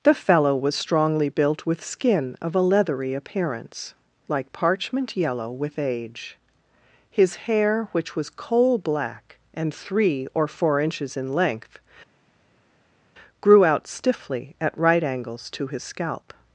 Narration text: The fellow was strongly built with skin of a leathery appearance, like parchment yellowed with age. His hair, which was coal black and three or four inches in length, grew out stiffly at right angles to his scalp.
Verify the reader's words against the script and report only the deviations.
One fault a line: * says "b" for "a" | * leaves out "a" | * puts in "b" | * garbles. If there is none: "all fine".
* says "yellow" for "yellowed"